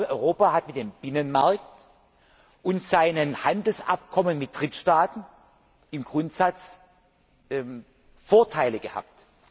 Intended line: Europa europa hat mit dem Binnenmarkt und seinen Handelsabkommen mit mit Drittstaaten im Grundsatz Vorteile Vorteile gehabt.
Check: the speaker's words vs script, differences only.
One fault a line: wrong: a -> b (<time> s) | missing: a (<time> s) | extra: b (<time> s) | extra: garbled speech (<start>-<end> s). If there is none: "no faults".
missing: europa (0.5 s)
missing: mit (4.6 s)
missing: Vorteile (8.8 s)